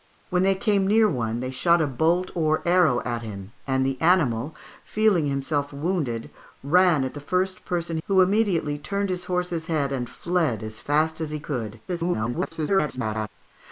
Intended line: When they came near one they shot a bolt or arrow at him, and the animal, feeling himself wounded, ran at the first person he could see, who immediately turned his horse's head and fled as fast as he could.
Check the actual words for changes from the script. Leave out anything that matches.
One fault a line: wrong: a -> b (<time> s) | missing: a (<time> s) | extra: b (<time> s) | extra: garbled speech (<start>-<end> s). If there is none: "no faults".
missing: he could see (8.0 s)
extra: garbled speech (11.9-13.3 s)